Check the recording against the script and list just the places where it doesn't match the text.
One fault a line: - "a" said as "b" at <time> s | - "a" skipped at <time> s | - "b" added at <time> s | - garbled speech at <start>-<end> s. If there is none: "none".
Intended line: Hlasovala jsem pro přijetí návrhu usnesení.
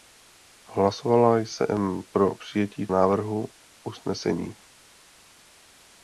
none